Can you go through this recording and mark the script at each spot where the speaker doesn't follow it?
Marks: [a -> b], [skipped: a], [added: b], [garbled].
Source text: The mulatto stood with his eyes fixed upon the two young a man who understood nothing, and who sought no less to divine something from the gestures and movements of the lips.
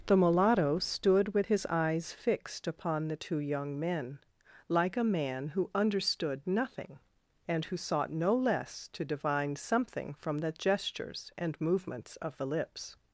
The mulatto stood with his eyes fixed upon the two young [added: men like] a man who understood nothing, and who sought no less to divine something from the gestures and movements of the lips.